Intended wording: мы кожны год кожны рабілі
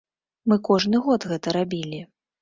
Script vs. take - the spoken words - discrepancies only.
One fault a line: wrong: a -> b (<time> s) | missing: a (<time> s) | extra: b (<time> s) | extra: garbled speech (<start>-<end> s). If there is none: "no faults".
wrong: кожны -> гэта (1.3 s)